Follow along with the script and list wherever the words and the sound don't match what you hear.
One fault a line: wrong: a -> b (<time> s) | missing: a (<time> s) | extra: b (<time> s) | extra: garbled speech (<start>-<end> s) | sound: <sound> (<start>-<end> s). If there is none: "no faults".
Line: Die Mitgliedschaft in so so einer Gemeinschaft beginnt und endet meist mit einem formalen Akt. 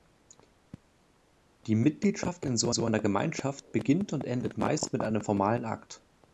no faults